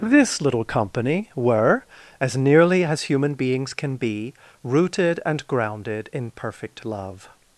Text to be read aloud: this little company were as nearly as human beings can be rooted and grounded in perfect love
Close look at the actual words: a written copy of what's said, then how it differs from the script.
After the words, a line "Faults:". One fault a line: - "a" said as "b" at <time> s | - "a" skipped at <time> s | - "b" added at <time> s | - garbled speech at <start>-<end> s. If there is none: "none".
this little company were as nearly as human beings can be rooted and grounded in perfect love
Faults:
none